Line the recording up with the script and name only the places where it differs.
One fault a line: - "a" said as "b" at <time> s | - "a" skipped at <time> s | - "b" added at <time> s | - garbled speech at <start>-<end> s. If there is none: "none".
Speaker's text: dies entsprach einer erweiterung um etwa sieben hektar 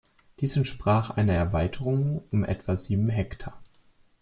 none